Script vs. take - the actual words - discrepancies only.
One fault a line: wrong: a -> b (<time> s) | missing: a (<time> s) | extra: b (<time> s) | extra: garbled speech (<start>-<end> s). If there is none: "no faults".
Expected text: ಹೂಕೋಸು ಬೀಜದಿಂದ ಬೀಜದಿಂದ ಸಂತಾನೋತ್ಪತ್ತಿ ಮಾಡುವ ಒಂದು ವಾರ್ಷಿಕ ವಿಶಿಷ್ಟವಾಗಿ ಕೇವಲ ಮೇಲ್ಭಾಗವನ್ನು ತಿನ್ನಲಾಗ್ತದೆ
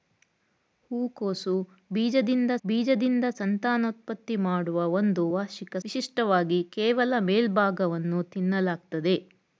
no faults